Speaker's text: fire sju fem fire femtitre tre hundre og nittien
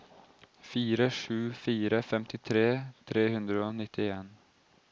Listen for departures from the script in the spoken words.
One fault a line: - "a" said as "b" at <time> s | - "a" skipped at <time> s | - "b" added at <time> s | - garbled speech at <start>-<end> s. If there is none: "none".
- "fem" skipped at 1.4 s